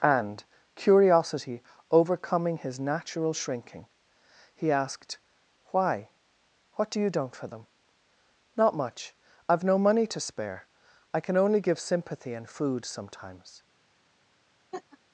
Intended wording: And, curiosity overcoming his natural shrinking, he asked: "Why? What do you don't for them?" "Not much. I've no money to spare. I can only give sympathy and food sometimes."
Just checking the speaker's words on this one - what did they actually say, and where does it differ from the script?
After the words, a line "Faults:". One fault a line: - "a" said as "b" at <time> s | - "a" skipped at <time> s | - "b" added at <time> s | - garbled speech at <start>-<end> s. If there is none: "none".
And, curiosity overcoming his natural shrinking, he asked: "Why? What do you don't for them?" "Not much. I've no money to spare. I can only give sympathy and food sometimes."
Faults:
none